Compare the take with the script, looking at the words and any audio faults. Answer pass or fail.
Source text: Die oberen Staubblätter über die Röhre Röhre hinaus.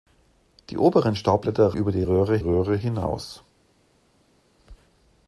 pass